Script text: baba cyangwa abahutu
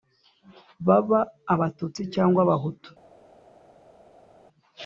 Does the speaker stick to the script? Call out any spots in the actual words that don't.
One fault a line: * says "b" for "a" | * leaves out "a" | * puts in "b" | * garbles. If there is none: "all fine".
* puts in "abatutsi"